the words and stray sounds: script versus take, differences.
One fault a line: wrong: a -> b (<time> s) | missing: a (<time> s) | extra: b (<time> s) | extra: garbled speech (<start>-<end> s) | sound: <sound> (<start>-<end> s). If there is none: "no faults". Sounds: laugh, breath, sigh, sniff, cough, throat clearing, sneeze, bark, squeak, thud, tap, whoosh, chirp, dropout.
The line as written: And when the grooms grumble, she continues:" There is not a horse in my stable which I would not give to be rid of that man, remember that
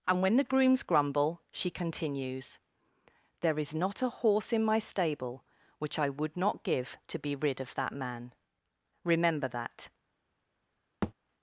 sound: thud (11.0-11.1 s)